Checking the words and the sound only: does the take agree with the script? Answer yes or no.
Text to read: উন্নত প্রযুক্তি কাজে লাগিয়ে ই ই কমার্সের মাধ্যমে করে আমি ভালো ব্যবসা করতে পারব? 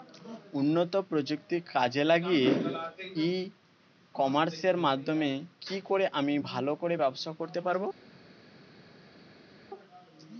no